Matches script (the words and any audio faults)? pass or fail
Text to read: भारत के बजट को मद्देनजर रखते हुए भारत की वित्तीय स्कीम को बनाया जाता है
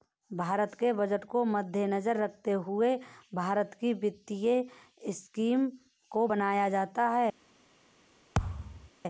fail